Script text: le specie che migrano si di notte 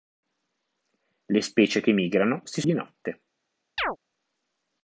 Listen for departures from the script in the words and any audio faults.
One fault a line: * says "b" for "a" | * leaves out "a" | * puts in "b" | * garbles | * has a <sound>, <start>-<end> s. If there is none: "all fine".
* has a chirp, 3.8-4.0 s